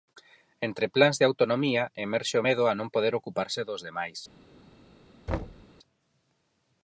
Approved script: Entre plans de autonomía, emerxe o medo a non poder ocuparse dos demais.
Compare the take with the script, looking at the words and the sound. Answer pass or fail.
fail